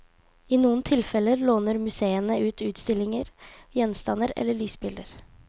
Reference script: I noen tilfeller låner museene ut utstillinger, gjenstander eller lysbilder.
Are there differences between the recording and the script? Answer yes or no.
no